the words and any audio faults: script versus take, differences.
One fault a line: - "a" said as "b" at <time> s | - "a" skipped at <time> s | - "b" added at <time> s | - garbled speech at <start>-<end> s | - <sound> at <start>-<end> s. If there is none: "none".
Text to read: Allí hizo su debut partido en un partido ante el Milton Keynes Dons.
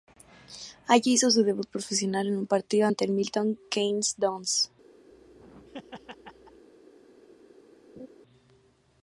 - "partido" said as "profesional" at 1.7 s
- laugh at 5.1-6.7 s
- laugh at 8.0-8.1 s